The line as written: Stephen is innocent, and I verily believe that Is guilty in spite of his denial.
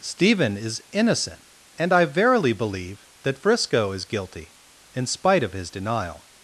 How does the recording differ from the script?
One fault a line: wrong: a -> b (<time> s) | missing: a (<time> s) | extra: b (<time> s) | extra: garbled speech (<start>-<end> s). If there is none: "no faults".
extra: Frisco (3.4 s)